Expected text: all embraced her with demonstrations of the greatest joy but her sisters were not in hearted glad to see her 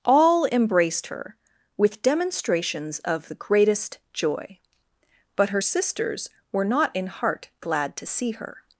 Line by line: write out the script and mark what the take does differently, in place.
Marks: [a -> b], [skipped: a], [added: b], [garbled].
all embraced her with demonstrations of the greatest joy but her sisters were not in [hearted -> heart] glad to see her